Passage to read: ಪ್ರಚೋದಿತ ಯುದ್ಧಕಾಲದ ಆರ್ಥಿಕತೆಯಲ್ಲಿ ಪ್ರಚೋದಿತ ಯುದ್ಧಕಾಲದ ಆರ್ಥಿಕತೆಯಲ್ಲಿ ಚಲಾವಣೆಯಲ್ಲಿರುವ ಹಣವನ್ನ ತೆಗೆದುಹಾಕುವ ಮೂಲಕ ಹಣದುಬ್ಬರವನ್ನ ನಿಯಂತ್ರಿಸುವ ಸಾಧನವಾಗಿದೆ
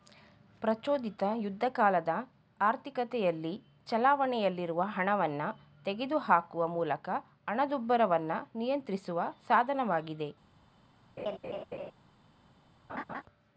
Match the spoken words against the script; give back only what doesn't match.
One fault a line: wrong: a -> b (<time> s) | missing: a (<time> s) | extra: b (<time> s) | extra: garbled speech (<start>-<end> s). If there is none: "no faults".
missing: ಪ್ರಚೋದಿತ ಯುದ್ಧಕಾಲದ ಆರ್ಥಿಕತೆಯಲ್ಲಿ (3.5 s)